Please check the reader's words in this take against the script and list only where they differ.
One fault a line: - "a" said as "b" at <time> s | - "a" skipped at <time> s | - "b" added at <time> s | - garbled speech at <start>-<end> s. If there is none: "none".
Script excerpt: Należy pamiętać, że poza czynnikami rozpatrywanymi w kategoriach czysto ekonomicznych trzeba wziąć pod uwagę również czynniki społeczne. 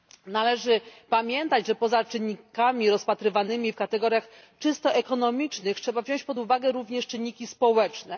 none